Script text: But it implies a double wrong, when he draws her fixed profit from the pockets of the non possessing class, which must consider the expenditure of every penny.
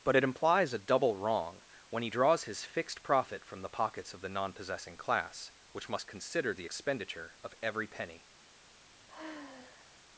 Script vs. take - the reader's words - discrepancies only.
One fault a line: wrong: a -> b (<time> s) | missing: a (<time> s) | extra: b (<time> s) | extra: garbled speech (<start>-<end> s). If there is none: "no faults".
wrong: her -> his (2.5 s)